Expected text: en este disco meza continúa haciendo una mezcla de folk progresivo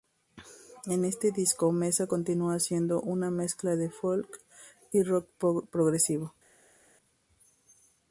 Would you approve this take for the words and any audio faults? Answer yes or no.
no